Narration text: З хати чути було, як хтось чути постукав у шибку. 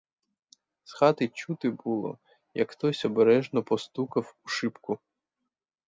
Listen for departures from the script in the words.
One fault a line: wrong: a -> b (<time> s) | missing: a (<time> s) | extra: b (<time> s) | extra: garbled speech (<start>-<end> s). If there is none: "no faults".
wrong: чути -> обережно (3.0 s)